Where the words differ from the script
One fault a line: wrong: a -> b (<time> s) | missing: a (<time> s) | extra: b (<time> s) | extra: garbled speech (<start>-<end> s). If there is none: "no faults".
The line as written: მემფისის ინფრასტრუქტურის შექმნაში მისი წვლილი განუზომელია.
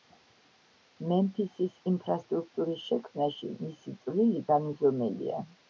no faults